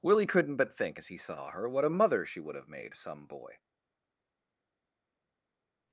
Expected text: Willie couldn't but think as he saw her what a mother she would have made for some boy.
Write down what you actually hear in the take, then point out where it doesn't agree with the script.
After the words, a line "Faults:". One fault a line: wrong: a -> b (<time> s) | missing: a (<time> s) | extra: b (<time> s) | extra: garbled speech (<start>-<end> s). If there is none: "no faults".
Willie couldn't but think as he saw her what a mother she would have made some boy.
Faults:
missing: for (2.9 s)